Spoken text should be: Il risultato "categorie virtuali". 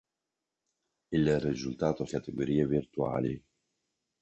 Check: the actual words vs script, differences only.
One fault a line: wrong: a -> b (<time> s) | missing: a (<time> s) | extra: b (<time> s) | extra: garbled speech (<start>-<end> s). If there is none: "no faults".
no faults